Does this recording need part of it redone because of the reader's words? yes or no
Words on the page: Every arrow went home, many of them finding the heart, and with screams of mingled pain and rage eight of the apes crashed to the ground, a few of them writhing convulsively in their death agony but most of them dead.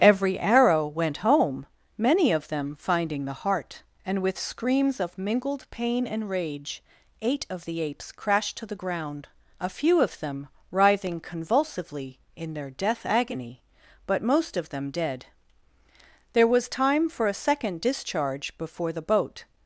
yes